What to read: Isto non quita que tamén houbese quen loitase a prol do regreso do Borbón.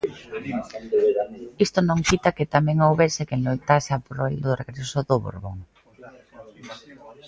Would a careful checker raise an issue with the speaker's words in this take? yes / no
no